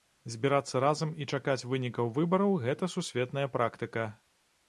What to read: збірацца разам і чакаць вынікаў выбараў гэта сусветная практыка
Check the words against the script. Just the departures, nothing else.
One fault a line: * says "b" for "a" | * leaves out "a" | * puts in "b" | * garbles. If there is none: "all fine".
all fine